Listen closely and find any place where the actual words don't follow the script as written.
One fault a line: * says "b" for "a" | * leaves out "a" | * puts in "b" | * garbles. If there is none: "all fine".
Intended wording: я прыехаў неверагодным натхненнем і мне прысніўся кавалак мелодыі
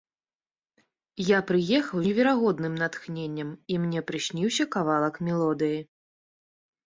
all fine